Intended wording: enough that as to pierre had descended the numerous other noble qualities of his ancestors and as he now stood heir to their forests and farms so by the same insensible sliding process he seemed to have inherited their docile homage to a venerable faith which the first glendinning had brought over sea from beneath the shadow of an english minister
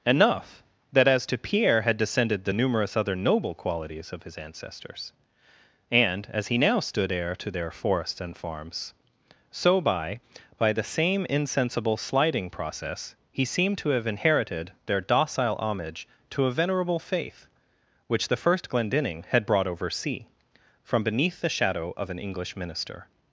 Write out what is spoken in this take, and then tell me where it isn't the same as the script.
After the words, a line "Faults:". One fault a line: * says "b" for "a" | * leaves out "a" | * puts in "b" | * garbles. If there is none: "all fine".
enough that as to pierre had descended the numerous other noble qualities of his ancestors and as he now stood heir to their forests and farms so by by the same insensible sliding process he seemed to have inherited their docile homage to a venerable faith which the first glendinning had brought over sea from beneath the shadow of an english minister
Faults:
* puts in "by"